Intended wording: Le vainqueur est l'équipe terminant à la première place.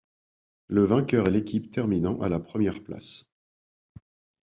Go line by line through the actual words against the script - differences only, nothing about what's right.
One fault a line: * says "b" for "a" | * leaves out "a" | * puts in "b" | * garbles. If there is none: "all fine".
all fine